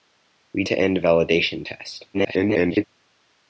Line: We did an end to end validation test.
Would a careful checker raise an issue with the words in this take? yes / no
yes